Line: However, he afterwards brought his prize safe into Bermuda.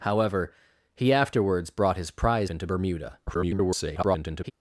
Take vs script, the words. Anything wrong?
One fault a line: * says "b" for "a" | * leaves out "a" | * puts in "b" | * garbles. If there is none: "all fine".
* leaves out "safe"
* garbles